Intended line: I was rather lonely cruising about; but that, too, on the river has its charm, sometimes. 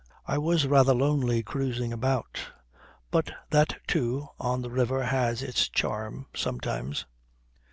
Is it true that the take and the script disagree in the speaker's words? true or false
false